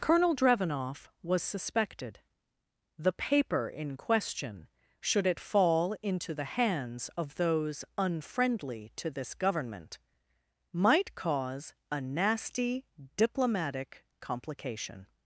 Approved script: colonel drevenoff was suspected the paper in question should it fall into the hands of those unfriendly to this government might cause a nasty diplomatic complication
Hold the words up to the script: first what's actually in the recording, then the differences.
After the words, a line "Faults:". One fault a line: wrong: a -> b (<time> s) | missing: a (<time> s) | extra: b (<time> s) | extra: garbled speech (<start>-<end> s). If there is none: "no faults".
colonel drevenoff was suspected the paper in question should it fall into the hands of those unfriendly to this government might cause a nasty diplomatic complication
Faults:
no faults